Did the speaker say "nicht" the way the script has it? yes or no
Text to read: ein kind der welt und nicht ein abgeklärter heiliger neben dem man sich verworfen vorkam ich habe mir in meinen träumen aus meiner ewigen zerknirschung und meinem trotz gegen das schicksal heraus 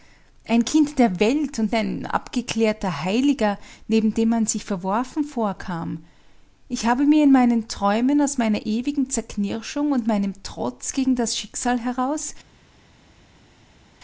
no